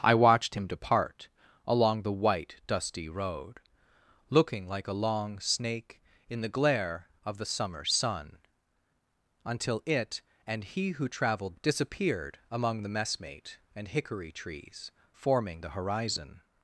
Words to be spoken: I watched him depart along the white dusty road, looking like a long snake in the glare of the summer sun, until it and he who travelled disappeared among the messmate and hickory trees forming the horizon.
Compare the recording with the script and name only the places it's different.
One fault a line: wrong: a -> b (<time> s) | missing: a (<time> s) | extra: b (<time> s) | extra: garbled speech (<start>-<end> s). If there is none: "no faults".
no faults